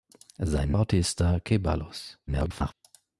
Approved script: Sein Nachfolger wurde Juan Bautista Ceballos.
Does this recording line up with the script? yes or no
no